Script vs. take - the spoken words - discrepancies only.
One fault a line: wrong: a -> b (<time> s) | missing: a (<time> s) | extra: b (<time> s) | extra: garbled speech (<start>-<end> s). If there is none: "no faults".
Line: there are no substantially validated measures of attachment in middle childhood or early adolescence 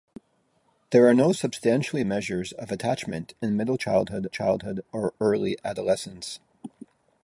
missing: validated (2.0 s)
extra: childhood (4.3 s)